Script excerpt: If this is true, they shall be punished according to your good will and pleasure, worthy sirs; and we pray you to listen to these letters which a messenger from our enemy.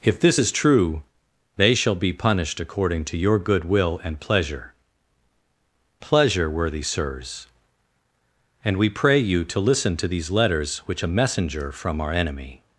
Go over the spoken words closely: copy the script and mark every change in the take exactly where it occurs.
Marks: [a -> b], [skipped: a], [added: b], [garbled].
If this is true, they shall be punished according to your good will and pleasure, [added: pleasure] worthy sirs; and we pray you to listen to these letters which a messenger from our enemy.